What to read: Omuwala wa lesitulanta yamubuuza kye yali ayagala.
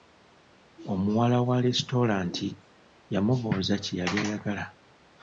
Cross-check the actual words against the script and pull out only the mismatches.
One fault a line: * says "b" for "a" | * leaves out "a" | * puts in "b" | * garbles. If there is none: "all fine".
all fine